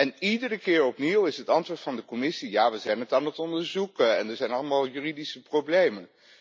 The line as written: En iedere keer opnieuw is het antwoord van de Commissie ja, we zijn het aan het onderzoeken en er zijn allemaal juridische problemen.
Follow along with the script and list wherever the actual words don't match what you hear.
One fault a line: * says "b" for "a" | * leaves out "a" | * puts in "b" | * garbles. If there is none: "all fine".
all fine